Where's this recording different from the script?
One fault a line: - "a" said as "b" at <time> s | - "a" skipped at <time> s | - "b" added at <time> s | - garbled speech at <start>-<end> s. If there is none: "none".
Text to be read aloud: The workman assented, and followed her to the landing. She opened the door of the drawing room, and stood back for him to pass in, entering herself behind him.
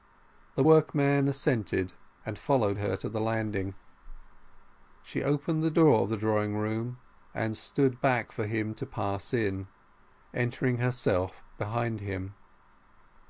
none